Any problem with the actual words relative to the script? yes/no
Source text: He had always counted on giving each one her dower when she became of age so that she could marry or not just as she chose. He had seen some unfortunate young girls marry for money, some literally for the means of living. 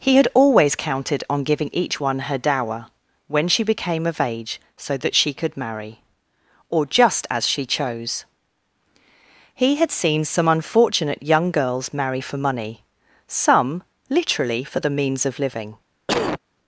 yes